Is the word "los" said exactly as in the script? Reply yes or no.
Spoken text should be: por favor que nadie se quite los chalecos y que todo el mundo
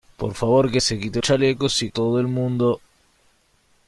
no